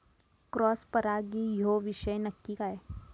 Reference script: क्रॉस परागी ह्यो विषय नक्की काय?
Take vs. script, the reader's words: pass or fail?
pass